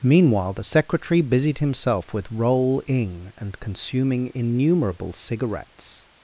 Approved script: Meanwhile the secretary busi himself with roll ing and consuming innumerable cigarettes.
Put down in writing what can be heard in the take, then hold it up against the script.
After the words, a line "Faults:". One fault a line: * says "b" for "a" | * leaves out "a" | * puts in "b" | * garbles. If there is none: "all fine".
Meanwhile the secretary busied himself with roll ing and consuming innumerable cigarettes.
Faults:
* says "busied" for "busi"